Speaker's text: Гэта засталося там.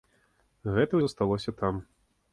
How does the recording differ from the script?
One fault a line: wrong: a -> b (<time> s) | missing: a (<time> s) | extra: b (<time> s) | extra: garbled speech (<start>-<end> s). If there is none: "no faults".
no faults